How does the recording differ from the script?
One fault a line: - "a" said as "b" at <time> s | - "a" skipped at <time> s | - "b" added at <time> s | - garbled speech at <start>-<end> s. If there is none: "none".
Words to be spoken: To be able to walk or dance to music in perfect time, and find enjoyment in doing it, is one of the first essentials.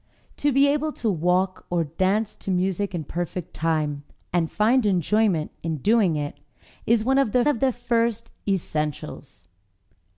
- "of the" added at 7.5 s